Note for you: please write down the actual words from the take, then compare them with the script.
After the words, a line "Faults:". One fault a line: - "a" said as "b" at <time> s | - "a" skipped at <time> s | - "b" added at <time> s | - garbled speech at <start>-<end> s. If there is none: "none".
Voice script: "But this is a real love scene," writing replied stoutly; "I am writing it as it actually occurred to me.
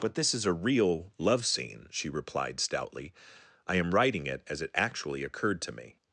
"But this is a real love scene," she replied stoutly; "I am writing it as it actually occurred to me.
Faults:
- "writing" said as "she" at 1.9 s